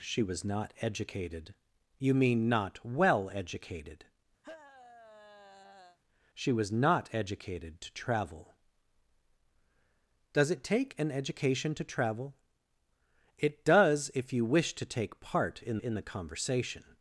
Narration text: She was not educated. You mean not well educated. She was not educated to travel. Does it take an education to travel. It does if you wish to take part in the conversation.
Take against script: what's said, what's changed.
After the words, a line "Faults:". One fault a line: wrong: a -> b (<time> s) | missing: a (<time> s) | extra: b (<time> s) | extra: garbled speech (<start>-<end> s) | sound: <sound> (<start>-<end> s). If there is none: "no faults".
She was not educated. You mean not well educated. She was not educated to travel. Does it take an education to travel. It does if you wish to take part in in the conversation.
Faults:
sound: sigh (4.4-6.0 s)
extra: in (15.8 s)